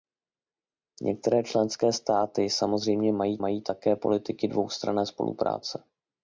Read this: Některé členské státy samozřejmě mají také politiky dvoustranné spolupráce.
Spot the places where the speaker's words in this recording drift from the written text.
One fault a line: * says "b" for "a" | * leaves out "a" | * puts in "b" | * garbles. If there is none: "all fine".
* puts in "mají"